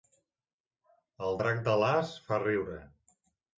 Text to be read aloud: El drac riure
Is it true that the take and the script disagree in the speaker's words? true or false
true